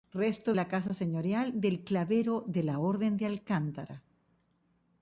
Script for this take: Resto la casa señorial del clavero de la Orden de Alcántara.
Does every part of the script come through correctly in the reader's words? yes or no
yes